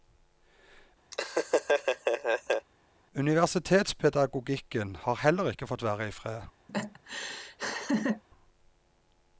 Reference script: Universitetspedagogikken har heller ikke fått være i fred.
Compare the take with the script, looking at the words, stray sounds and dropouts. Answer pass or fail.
fail